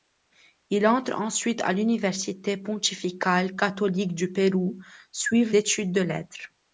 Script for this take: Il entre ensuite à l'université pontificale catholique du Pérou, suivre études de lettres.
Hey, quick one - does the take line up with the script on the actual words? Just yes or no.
yes